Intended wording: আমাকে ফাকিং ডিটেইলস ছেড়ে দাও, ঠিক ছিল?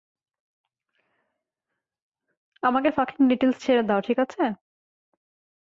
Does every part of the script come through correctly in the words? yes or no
no